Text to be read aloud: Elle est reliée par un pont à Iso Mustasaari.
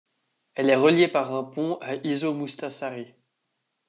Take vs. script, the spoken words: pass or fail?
pass